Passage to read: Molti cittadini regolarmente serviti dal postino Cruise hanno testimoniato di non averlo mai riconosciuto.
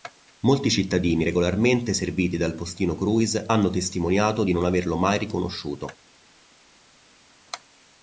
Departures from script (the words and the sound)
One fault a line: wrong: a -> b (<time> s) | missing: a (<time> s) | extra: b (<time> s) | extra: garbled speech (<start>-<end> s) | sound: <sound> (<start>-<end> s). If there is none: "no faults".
no faults